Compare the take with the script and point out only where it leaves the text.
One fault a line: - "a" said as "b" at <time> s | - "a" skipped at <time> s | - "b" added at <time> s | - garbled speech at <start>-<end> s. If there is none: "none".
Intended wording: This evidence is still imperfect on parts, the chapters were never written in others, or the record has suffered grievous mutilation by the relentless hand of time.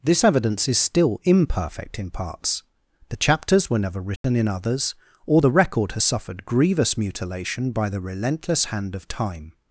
- "on" said as "in" at 2.0 s